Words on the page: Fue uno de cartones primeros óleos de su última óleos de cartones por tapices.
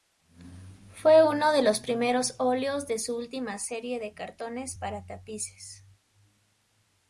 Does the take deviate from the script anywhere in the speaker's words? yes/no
yes